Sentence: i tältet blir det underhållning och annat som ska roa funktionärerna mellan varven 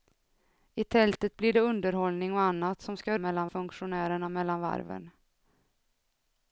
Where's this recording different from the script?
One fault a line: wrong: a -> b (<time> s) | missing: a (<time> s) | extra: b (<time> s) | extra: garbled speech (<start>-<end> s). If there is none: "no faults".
wrong: roa -> mellan (3.2 s)